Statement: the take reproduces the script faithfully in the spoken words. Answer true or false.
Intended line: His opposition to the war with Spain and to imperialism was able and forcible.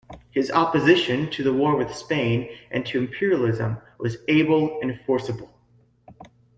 true